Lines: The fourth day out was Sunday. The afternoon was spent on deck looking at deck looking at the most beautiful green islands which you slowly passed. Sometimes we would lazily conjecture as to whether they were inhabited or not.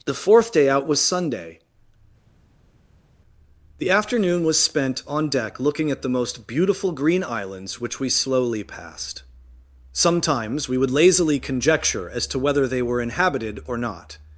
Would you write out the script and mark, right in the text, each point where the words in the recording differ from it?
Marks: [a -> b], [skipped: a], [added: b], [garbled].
The fourth day out was Sunday. The afternoon was spent on deck looking at [skipped: deck looking at] the most beautiful green islands which [you -> we] slowly passed. Sometimes we would lazily conjecture as to whether they were inhabited or not.